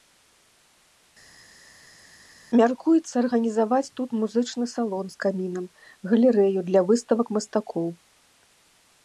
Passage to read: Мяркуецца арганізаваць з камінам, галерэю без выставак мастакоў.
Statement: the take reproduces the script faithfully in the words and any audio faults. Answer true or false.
false